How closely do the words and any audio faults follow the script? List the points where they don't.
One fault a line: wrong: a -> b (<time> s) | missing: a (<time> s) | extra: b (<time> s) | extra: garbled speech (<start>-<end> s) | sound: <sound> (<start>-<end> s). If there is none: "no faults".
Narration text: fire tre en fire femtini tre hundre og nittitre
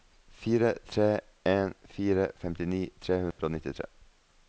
sound: dropout (3.3-3.4 s)